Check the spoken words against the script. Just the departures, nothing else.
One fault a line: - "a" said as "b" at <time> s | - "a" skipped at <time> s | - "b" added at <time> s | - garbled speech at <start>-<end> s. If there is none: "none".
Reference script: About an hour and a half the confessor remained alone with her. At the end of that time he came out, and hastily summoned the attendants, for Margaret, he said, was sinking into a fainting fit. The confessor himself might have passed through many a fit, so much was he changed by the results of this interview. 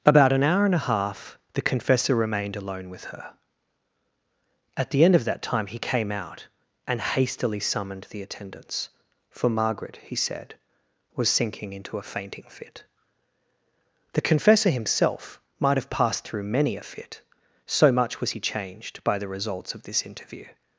none